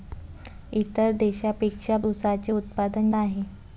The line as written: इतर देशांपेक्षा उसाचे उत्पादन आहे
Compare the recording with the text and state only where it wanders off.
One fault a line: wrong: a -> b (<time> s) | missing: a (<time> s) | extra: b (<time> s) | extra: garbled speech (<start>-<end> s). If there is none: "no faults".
no faults